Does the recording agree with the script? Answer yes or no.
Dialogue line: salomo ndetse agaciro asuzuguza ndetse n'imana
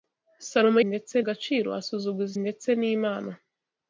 yes